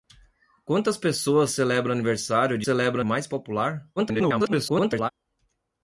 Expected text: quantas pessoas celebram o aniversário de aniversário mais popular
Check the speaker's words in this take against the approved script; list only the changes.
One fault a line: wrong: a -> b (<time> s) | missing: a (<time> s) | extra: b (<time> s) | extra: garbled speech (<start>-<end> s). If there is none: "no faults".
wrong: aniversário -> celebram (2.6 s)
extra: garbled speech (4.0-5.1 s)